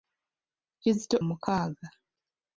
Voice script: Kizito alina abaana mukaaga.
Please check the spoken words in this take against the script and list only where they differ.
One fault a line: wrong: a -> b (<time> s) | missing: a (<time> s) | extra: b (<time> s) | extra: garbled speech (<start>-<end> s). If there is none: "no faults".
missing: alina abaana (1.2 s)